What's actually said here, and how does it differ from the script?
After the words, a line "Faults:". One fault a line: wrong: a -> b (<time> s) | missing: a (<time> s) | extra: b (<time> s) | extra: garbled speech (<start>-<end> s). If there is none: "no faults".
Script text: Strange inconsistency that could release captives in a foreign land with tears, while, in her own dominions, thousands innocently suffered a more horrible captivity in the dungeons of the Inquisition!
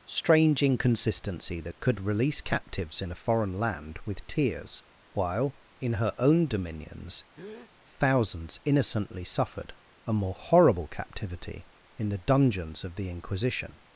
Strange inconsistency that could release captives in a foreign land with tears, while, in her own dominions, thousands innocently suffered a more horrible captivity in the dungeons of the Inquisition!
Faults:
no faults